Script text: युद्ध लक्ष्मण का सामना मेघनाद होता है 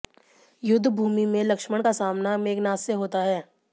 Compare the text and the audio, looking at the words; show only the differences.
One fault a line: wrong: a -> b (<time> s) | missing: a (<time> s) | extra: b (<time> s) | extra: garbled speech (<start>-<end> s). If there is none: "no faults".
extra: भूमि में (0.9 s)
extra: से (2.8 s)